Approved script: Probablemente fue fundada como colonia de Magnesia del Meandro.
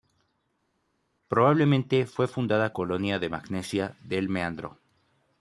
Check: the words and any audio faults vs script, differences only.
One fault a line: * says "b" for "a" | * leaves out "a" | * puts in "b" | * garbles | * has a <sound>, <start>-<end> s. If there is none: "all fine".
* leaves out "como"